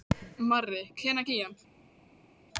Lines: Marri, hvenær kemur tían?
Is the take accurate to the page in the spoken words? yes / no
no